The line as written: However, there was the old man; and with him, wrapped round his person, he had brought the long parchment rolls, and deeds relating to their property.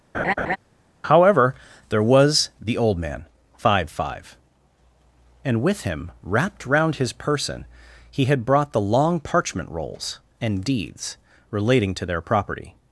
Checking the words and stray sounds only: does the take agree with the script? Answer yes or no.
no